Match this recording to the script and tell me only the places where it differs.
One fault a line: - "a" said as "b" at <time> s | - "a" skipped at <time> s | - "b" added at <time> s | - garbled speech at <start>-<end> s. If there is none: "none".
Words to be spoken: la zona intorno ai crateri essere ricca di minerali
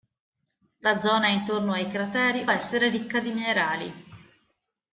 none